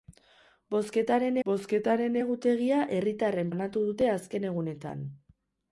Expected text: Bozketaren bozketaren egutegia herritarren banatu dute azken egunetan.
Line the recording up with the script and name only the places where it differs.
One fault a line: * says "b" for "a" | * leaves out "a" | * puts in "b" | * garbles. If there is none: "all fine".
all fine